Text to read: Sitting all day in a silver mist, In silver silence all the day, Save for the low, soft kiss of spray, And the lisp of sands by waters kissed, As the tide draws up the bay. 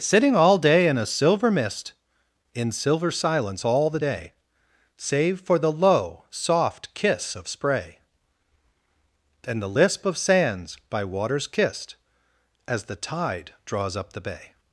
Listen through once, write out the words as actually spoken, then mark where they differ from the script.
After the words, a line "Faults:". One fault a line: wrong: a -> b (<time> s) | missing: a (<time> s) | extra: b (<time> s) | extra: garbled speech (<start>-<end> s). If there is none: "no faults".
Sitting all day in a silver mist, In silver silence all the day, Save for the low, soft kiss of spray, And the lisp of sands by waters kissed, As the tide draws up the bay.
Faults:
no faults